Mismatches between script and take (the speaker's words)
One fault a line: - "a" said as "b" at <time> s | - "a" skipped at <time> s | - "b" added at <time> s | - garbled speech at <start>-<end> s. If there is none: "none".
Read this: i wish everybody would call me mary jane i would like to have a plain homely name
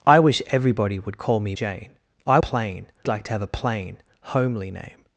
- "mary" skipped at 1.6 s
- "would" said as "plain" at 2.4 s